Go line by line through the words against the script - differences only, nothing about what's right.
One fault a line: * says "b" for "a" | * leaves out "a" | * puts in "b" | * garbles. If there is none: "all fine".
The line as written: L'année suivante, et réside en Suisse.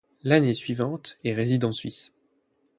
all fine